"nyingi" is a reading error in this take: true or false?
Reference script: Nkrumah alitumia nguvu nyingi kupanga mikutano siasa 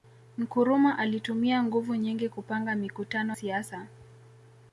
false